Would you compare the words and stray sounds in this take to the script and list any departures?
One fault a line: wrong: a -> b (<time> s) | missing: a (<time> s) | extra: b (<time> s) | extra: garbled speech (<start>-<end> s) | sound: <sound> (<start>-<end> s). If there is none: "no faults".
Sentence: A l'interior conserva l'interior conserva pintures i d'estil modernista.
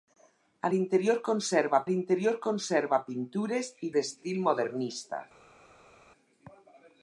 no faults